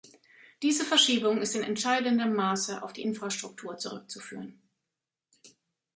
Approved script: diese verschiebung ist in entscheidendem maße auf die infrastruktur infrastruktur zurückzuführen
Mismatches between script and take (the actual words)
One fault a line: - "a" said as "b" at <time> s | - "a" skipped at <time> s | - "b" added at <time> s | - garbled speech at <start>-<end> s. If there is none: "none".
- "infrastruktur" skipped at 3.8 s